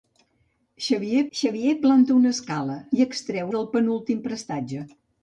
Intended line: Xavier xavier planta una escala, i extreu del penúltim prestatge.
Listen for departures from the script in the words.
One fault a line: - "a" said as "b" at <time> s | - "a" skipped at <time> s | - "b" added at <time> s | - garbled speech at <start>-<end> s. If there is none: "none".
none